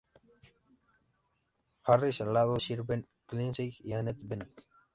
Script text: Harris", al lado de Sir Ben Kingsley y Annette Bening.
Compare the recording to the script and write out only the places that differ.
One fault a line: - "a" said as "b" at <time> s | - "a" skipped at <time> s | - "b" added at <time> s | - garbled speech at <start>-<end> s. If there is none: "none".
- "de" skipped at 2.6 s